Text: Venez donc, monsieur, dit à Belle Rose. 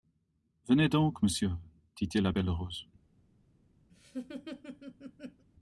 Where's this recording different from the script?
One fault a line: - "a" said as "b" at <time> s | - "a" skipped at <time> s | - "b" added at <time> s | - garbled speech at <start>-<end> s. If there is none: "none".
- "il" added at 2.1 s